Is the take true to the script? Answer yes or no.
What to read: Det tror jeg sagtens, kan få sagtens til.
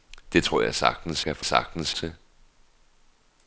yes